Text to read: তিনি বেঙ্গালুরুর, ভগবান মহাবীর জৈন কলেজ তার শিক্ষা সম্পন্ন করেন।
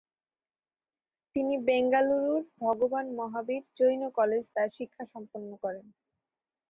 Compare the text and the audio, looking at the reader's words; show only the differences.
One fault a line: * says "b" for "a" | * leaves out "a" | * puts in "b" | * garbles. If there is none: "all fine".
all fine